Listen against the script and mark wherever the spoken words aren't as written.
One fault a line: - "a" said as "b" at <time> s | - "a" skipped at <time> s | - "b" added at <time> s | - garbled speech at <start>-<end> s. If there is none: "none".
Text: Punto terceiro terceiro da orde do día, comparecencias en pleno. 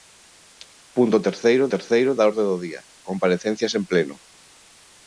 none